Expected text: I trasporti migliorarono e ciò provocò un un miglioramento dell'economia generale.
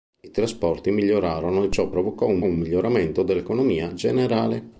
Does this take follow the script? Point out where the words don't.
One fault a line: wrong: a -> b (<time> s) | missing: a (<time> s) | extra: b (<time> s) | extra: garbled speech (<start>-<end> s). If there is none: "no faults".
no faults